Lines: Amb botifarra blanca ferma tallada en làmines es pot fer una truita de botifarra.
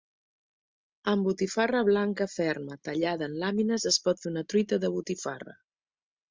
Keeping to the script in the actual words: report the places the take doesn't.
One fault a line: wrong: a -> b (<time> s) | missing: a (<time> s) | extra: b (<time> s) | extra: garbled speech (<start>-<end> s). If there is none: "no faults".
no faults